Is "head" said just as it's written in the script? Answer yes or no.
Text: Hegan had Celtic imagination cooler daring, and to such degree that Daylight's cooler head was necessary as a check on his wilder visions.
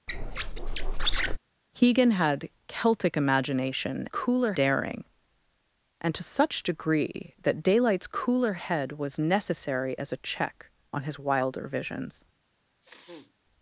yes